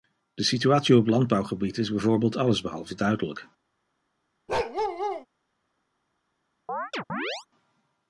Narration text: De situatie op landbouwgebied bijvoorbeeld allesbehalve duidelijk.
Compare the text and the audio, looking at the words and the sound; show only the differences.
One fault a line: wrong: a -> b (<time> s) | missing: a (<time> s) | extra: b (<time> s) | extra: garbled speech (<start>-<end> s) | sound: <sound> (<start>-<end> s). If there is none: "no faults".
extra: is (1.8 s)
sound: bark (4.5-5.3 s)
sound: chirp (6.7-7.5 s)